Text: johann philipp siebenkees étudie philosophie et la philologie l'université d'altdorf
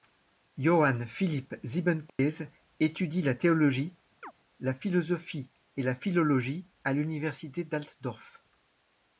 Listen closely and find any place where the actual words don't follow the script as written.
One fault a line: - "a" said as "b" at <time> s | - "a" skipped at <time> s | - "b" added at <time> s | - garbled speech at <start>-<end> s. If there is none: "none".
- "la théologie la" added at 3.2 s
- "à" added at 6.8 s